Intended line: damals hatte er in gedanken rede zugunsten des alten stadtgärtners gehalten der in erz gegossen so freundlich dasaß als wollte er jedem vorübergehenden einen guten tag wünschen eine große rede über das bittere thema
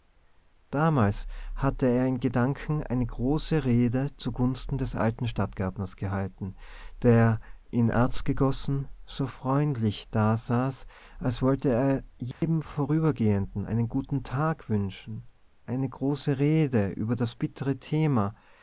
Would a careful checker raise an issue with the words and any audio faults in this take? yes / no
yes